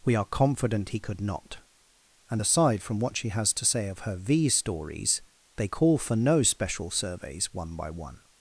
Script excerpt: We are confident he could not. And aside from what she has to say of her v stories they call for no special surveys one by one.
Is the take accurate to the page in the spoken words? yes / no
yes